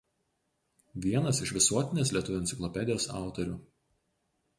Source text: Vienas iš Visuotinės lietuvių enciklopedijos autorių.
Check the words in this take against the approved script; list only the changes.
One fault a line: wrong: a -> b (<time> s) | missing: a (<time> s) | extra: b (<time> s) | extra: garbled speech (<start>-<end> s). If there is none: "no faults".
no faults